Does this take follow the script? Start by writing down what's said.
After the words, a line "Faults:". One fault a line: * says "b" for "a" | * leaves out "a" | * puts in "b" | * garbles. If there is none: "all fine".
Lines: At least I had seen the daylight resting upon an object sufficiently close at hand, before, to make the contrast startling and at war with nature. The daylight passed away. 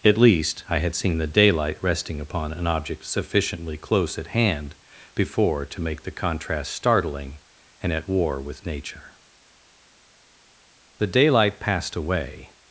At least I had seen the daylight resting upon an object sufficiently close at hand, before, to make the contrast startling and at war with nature. The daylight passed away.
Faults:
all fine